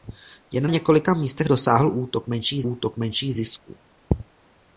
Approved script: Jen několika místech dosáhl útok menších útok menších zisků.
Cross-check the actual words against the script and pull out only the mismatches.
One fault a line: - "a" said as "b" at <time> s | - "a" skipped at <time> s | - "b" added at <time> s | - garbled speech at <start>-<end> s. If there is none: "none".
none